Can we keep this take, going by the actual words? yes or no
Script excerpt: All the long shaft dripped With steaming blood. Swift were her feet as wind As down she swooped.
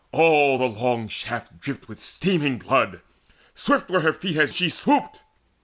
no